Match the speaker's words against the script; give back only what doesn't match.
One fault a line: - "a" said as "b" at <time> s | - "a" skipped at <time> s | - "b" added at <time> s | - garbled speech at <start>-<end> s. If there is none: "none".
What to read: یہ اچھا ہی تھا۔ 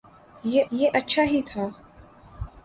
- "یہ" added at 0.7 s